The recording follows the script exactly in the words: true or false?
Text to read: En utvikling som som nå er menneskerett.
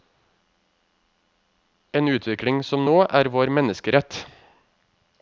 false